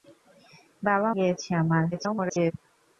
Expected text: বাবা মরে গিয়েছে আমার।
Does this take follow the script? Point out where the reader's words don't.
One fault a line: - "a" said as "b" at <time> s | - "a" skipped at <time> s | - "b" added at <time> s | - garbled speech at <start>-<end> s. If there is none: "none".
- "মরে" skipped at 1.1 s
- garbled speech at 1.9-2.5 s